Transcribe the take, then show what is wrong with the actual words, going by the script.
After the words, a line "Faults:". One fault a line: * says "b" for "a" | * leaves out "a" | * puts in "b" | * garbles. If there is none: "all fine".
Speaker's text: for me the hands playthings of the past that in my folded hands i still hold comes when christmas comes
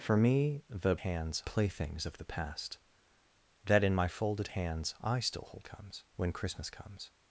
for me the hands playthings of the past that in my folded hands i still hold comes when christmas comes
Faults:
all fine